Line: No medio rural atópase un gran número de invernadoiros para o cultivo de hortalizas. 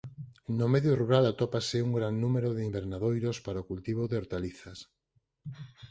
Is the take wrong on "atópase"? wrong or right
right